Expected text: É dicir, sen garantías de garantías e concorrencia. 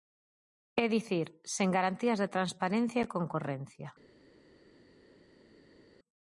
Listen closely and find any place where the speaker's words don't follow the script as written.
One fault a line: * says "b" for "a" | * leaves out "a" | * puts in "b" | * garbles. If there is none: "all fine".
* says "transparencia" for "garantías"